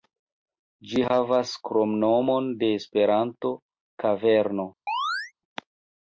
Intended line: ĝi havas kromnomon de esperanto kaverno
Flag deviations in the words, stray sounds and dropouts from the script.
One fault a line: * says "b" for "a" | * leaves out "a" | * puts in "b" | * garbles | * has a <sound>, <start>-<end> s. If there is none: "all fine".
* has a chirp, 4.9-5.3 s